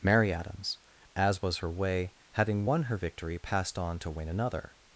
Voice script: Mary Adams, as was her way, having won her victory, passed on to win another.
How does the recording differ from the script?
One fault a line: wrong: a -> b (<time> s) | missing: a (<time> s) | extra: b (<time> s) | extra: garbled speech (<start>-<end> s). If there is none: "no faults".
no faults